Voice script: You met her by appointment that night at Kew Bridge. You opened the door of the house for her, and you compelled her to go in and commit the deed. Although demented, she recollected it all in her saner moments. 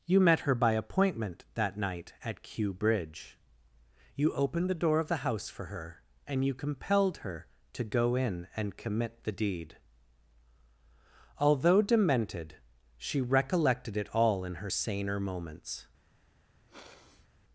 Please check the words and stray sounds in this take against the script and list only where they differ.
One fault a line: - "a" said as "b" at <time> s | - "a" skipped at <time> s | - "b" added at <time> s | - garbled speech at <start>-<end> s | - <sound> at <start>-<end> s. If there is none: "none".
- sniff at 16.7-17.3 s